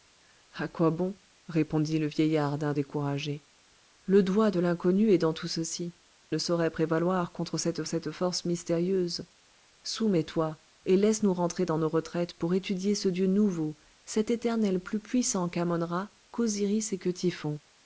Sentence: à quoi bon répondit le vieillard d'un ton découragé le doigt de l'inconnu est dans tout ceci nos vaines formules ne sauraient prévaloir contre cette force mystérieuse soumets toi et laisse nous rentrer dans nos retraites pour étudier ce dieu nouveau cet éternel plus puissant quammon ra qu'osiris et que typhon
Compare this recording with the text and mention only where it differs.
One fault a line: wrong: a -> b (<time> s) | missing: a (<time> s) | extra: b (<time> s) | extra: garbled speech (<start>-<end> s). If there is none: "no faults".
missing: ton (2.7 s)
missing: nos vaines formules (5.9 s)
extra: cette (7.8 s)